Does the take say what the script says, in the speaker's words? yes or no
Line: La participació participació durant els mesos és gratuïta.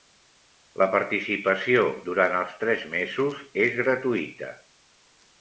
no